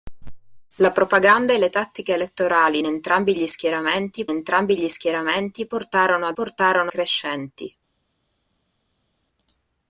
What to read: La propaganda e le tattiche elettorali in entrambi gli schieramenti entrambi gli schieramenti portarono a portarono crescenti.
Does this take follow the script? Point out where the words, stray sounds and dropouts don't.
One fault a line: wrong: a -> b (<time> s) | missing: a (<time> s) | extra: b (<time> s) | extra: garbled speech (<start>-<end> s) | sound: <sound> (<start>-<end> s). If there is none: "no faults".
no faults